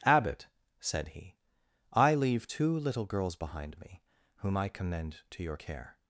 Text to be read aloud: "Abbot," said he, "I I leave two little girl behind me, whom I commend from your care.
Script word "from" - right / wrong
wrong